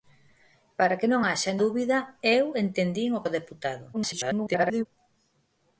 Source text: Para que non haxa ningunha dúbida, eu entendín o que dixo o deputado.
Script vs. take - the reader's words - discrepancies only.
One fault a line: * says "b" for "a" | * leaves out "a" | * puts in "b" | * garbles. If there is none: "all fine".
* leaves out "ningunha"
* leaves out "que dixo"
* garbles